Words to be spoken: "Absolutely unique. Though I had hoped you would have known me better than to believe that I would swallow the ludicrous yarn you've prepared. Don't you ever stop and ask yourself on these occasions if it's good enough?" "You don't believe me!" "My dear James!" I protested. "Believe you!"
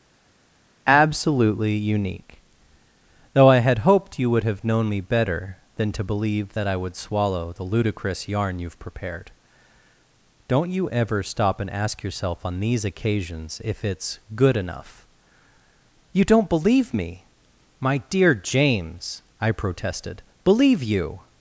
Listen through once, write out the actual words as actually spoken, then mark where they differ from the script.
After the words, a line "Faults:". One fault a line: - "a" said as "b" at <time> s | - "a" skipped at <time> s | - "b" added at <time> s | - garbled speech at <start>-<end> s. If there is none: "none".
"Absolutely unique. Though I had hoped you would have known me better than to believe that I would swallow the ludicrous yarn you've prepared. Don't you ever stop and ask yourself on these occasions if it's good enough?" "You don't believe me!" "My dear James!" I protested. "Believe you!"
Faults:
none